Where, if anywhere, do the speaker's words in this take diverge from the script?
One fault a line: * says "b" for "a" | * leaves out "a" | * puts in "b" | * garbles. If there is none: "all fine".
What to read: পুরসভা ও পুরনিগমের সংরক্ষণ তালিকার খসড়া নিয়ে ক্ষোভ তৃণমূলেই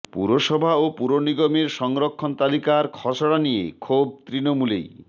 all fine